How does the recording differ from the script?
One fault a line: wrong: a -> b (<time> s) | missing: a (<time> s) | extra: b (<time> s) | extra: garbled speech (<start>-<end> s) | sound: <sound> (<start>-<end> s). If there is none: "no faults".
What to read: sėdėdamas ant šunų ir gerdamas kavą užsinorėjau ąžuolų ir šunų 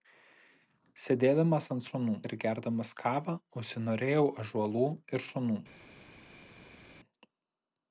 no faults